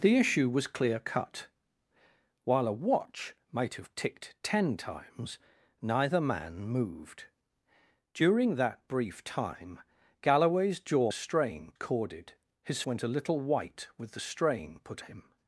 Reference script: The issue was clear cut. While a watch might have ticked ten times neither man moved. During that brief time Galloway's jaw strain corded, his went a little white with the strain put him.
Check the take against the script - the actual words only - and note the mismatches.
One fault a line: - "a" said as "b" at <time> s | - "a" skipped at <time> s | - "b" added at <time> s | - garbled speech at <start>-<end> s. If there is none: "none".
none